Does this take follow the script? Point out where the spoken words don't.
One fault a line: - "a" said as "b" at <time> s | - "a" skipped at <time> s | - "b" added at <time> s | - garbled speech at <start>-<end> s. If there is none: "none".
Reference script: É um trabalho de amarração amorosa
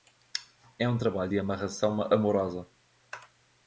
none